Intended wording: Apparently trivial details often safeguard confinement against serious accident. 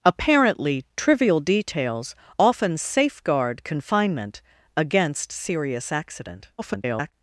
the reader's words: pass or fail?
fail